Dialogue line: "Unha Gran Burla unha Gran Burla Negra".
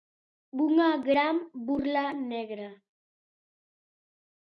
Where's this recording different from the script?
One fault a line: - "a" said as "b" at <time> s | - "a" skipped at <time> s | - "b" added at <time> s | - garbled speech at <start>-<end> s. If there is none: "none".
- "unha Gran Burla" skipped at 2.0 s